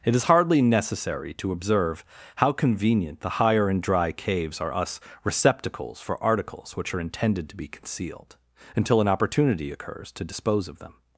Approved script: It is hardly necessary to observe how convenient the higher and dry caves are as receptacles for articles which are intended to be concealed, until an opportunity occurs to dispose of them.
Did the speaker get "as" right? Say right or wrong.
wrong